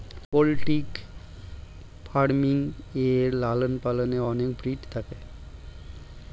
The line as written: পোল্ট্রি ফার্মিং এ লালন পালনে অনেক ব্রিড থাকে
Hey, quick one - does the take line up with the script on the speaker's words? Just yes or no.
yes